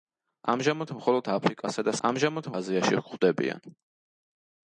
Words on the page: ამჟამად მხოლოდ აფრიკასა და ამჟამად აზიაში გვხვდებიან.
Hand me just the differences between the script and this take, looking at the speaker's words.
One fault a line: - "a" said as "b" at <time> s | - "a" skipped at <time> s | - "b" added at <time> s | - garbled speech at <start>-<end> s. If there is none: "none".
none